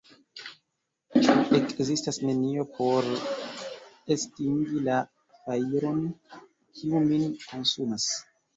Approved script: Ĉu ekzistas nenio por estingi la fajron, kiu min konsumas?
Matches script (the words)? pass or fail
pass